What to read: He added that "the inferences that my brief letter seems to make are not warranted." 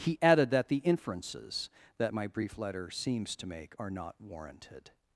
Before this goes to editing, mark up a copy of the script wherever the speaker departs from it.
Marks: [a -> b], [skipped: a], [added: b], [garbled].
He added that "the inferences that my brief letter seems to make are not warranted."